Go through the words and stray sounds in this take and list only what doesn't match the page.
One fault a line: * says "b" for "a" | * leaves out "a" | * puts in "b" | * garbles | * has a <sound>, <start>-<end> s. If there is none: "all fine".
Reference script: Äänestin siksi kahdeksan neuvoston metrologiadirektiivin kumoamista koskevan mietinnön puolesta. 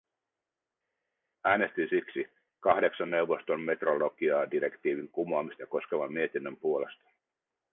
all fine